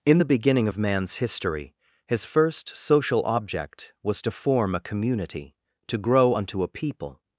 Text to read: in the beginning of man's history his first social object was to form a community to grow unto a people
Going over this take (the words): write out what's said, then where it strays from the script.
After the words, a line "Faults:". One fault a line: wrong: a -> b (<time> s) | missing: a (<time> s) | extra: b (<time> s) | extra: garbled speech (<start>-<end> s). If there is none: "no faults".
in the beginning of man's history his first social object was to form a community to grow unto a people
Faults:
no faults